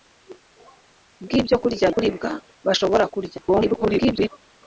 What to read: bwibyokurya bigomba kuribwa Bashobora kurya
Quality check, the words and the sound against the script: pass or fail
fail